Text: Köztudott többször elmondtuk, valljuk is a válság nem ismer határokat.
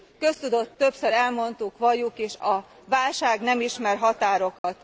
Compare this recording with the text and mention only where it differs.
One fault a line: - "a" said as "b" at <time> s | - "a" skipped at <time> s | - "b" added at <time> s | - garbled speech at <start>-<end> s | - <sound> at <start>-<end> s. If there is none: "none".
- dropout at 4.6-4.6 s